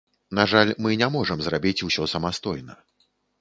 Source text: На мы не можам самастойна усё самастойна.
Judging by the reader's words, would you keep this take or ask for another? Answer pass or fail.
fail